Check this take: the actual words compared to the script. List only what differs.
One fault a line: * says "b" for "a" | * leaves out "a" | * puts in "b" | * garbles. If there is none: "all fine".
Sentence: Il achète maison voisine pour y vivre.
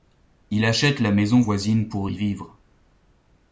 * puts in "la"